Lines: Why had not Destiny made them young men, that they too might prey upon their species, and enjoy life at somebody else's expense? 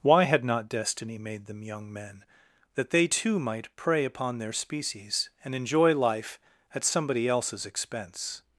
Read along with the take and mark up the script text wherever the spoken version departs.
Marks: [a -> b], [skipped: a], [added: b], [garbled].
Why had not Destiny made them young men, that they too might prey upon their species, and enjoy life at somebody else's expense?